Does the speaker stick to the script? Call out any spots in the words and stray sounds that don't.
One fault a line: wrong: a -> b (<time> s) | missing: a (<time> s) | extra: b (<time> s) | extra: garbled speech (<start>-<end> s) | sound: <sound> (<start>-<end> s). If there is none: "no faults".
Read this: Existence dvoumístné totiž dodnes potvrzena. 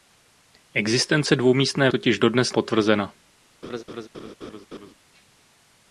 sound: laugh (3.6-4.9 s)